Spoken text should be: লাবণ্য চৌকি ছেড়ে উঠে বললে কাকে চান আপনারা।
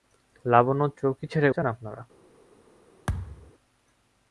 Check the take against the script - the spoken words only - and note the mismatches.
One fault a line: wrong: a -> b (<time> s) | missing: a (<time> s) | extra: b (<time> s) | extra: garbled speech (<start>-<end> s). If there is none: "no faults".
missing: উঠে বললে কাকে (1.5 s)